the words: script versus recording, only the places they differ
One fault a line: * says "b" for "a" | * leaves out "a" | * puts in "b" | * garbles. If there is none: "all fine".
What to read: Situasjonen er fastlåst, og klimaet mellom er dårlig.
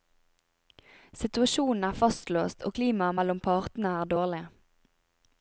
* puts in "partene"